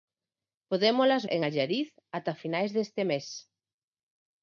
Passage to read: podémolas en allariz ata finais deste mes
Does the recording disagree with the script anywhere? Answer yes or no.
no